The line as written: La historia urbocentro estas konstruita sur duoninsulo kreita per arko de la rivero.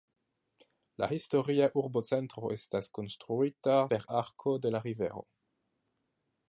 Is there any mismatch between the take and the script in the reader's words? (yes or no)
yes